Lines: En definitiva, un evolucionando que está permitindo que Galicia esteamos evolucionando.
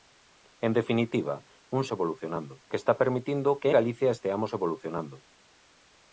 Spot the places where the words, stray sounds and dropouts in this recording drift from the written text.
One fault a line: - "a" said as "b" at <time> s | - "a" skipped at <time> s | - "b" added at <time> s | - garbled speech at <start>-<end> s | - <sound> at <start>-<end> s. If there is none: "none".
none